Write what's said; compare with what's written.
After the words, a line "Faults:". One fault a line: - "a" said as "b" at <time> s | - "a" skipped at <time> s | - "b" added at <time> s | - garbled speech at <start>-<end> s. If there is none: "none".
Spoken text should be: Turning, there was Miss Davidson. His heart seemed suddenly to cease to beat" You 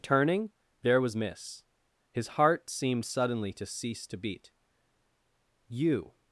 Turning, there was Miss. His heart seemed suddenly to cease to beat" You
Faults:
- "Davidson" skipped at 1.6 s